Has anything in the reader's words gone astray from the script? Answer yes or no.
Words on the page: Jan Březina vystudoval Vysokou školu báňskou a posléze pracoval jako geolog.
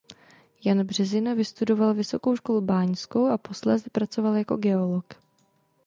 no